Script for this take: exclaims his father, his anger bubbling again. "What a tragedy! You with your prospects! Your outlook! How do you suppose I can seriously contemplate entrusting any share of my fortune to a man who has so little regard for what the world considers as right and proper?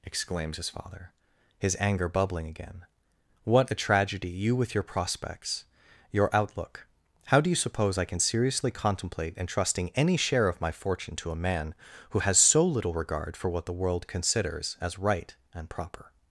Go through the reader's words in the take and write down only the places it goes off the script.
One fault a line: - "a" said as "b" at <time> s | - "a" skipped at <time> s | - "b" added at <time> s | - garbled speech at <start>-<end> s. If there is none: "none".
none